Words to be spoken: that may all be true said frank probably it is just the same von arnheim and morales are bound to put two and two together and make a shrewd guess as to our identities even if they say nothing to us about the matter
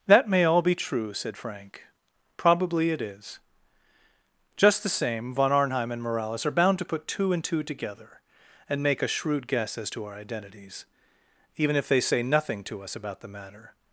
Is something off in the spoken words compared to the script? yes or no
no